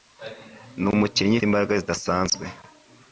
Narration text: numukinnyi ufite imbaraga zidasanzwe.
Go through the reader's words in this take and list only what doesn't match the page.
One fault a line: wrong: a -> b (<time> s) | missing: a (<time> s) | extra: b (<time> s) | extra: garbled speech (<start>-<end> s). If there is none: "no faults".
missing: ufite (1.4 s)